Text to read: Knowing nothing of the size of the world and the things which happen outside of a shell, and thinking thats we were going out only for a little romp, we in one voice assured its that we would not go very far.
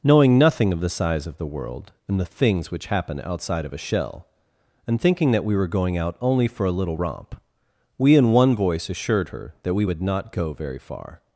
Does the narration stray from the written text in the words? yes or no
yes